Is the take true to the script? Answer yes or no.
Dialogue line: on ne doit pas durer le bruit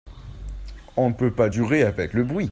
no